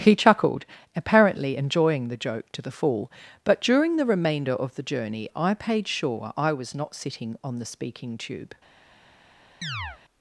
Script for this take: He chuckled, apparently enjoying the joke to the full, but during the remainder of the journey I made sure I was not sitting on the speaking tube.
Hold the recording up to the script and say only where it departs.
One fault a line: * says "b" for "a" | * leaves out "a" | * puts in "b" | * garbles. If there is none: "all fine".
* says "paid" for "made"